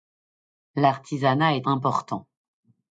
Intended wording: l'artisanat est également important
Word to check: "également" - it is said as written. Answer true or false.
false